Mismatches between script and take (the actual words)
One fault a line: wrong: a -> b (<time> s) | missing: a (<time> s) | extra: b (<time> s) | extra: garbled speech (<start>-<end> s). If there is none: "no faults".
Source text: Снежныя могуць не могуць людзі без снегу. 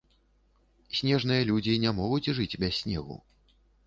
wrong: могуць -> людзі (1.5 s)
wrong: людзі -> жыць (2.4 s)